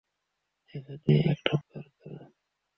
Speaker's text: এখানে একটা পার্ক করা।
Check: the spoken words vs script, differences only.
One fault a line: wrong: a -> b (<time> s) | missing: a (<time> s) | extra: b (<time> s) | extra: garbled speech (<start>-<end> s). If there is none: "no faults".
no faults